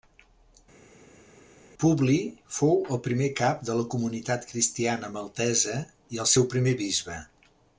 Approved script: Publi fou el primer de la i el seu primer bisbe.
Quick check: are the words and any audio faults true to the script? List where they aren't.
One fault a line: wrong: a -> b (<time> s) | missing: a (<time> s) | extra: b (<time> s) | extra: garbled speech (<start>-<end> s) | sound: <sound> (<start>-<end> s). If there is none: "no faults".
extra: cap (3.4 s)
extra: comunitat cristiana maltesa (3.9 s)